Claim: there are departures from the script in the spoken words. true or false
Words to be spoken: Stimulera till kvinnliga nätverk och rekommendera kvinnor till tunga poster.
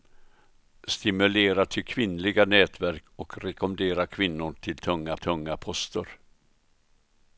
true